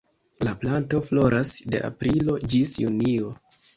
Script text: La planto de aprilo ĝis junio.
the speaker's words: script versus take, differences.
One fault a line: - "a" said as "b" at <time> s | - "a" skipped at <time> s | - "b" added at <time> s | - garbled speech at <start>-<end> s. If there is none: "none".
- "floras" added at 1.1 s